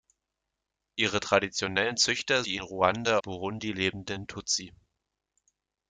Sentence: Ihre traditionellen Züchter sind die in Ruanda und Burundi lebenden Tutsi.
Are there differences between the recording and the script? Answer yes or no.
yes